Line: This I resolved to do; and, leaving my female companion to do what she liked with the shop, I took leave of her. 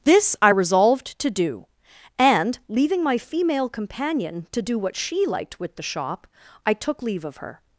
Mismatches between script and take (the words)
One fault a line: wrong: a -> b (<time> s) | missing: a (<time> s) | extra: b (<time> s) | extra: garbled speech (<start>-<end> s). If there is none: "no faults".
no faults